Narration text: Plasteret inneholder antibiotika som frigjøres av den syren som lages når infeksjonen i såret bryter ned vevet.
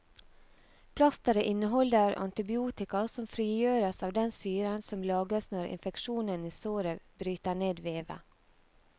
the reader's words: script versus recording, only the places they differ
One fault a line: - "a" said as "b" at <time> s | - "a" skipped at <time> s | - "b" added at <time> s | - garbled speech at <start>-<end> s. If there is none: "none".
none